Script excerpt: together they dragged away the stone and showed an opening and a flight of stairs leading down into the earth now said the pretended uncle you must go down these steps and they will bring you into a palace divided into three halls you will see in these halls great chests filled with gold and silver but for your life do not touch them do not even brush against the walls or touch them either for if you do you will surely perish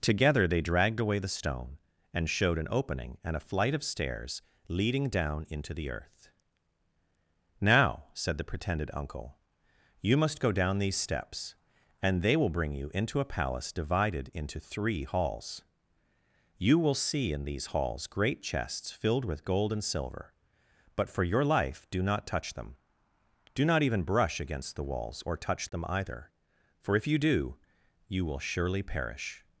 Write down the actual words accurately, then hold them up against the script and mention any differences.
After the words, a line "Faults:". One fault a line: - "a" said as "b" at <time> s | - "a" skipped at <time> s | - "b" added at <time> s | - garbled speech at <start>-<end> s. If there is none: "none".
together they dragged away the stone and showed an opening and a flight of stairs leading down into the earth now said the pretended uncle you must go down these steps and they will bring you into a palace divided into three halls you will see in these halls great chests filled with gold and silver but for your life do not touch them do not even brush against the walls or touch them either for if you do you will surely perish
Faults:
none